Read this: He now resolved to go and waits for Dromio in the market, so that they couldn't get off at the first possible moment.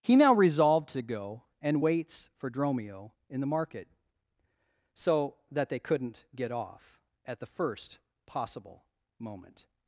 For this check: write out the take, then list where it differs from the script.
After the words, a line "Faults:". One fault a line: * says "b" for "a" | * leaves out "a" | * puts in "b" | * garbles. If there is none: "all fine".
He now resolved to go and waits for Dromio in the market, so that they couldn't get off at the first possible moment.
Faults:
all fine